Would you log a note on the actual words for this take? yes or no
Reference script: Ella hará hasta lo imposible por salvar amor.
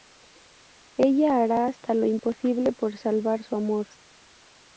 yes